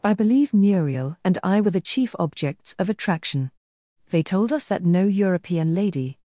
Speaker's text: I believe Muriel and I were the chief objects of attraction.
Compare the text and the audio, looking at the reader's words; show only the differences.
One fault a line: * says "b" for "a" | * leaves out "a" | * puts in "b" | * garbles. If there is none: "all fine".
* puts in "They told us that no European lady"